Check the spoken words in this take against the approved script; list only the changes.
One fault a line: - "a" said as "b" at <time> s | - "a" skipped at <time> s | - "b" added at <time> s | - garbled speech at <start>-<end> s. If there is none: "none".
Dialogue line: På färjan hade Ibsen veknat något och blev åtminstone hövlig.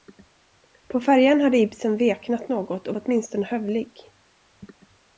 - "blev" skipped at 3.0 s